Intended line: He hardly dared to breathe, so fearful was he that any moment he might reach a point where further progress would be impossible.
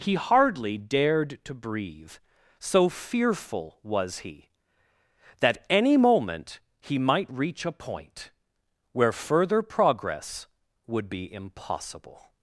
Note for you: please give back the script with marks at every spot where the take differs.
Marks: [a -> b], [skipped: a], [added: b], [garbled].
He hardly dared to breathe, so fearful was he that any moment he might reach a point where further progress would be impossible.